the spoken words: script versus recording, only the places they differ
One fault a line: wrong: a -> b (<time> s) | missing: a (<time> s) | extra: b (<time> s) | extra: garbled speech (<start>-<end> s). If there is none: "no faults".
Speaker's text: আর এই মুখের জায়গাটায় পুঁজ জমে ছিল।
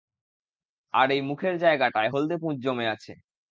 extra: হলদে (2.1 s)
wrong: ছিল -> আছে (2.9 s)